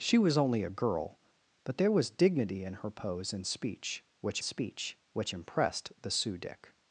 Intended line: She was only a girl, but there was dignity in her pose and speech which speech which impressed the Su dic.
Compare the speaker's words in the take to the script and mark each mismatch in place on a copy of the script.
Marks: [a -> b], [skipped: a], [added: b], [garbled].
She was only a girl, but there was dignity in her pose and speech which speech which impressed the Su dic.